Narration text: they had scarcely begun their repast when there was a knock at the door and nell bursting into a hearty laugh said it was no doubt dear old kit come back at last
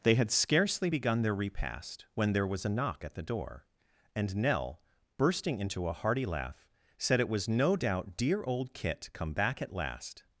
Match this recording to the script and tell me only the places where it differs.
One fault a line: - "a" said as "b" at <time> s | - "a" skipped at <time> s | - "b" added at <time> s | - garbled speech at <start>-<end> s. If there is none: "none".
none